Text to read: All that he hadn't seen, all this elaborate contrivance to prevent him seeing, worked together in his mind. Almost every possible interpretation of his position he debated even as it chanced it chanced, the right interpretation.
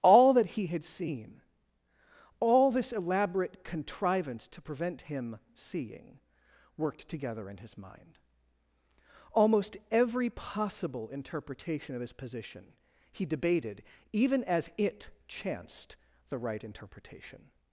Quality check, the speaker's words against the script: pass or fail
fail